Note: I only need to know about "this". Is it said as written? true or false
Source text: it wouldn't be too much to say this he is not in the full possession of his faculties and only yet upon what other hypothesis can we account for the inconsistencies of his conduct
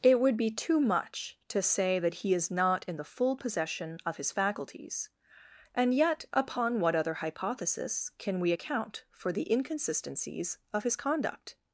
false